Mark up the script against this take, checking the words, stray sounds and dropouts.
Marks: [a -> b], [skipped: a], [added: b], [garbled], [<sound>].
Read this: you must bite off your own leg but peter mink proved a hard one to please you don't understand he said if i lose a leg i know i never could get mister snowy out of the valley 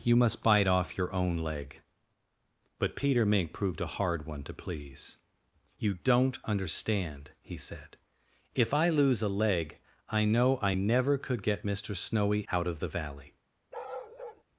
you must bite off your own leg but peter mink proved a hard one to please you don't understand he said if i lose a leg i know i never could get mister snowy out of the valley [bark]